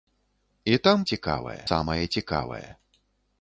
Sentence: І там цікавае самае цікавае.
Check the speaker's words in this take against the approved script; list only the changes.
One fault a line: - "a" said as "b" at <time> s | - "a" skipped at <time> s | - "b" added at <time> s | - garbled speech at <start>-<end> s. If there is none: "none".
none